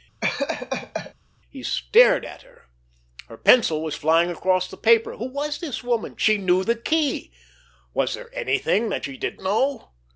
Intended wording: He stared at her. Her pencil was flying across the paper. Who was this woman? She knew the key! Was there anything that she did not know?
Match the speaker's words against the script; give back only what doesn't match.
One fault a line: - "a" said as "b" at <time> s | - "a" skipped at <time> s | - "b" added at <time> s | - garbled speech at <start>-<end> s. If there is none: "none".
- "not" skipped at 9.4 s